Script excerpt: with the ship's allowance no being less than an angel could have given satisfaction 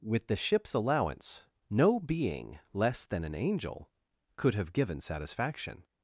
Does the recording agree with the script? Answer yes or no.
yes